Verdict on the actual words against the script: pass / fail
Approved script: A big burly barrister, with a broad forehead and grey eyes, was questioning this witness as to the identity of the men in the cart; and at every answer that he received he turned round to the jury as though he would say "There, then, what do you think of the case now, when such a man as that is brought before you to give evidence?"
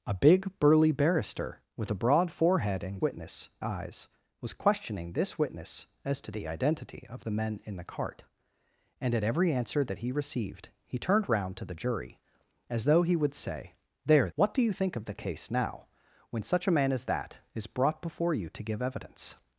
fail